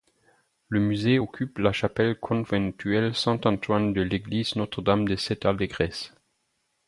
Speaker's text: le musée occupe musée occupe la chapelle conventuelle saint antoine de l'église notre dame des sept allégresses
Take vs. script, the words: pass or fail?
fail